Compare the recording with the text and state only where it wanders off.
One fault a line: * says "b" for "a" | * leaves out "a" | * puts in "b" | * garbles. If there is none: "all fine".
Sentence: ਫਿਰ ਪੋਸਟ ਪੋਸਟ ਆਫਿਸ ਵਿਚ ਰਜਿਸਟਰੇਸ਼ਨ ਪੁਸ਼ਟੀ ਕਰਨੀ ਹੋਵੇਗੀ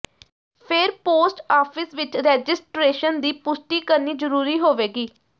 * leaves out "ਪੋਸਟ"
* puts in "ਦੀ"
* puts in "ਜ਼ਰੂਰੀ"